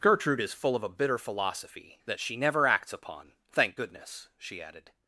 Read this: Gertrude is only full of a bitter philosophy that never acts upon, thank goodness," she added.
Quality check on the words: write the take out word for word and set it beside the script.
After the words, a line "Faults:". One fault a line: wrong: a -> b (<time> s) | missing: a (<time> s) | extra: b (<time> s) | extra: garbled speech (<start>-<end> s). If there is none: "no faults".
Gertrude is full of a bitter philosophy that she never acts upon, thank goodness," she added.
Faults:
missing: only (0.5 s)
extra: she (2.2 s)